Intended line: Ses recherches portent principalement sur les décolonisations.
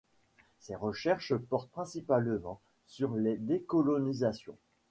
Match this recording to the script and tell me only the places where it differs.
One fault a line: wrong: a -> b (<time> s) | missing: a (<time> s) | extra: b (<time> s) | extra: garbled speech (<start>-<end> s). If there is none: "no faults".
no faults